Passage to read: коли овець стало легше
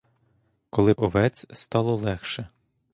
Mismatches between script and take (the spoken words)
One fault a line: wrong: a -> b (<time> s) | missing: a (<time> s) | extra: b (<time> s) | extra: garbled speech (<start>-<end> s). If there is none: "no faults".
no faults